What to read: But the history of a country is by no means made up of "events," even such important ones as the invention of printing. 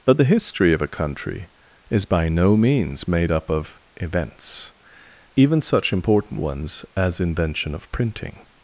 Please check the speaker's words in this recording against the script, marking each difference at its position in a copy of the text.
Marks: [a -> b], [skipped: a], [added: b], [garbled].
But the history of a country is by no means made up of "events," even such important ones as [skipped: the] invention of printing.